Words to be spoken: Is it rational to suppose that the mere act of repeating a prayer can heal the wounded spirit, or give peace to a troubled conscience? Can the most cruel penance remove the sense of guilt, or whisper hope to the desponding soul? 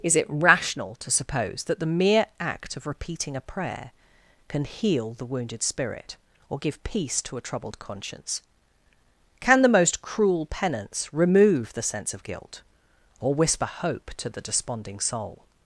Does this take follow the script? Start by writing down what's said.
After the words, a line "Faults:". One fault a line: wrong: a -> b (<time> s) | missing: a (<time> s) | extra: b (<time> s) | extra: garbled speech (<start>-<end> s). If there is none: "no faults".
Is it rational to suppose that the mere act of repeating a prayer can heal the wounded spirit, or give peace to a troubled conscience? Can the most cruel penance remove the sense of guilt, or whisper hope to the desponding soul?
Faults:
no faults